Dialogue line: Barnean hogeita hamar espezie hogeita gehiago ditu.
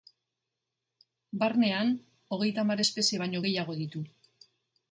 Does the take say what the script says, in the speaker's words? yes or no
no